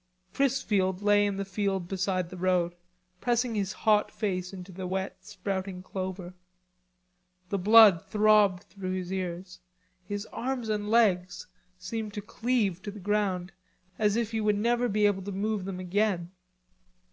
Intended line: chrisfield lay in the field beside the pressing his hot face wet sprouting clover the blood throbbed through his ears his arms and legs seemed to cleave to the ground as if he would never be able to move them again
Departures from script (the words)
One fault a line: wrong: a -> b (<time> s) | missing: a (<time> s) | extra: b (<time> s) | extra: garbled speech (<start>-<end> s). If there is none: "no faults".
extra: road (2.4 s)
extra: into the (4.5 s)